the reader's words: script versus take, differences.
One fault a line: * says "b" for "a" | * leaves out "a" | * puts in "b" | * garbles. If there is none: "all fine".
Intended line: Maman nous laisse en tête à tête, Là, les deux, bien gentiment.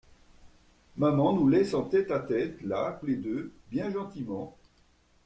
all fine